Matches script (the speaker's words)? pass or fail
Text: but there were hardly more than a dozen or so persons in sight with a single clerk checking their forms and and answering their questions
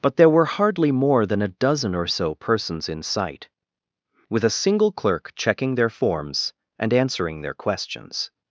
fail